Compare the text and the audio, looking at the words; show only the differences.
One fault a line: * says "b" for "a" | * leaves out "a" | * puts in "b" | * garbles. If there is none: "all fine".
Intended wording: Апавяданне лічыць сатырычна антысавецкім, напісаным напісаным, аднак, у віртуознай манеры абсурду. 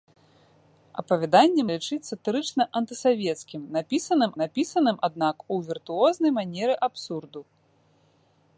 all fine